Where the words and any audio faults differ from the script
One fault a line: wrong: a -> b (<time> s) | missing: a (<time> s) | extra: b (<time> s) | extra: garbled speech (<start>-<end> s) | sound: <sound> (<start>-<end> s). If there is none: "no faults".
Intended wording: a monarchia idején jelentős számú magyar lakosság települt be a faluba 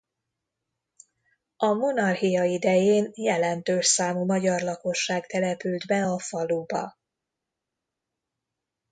no faults